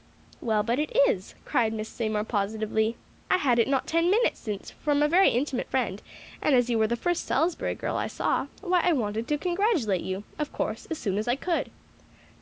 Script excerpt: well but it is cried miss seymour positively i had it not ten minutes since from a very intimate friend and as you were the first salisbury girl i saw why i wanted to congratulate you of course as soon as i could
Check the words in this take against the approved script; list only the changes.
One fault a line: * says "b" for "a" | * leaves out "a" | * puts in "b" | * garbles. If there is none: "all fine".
all fine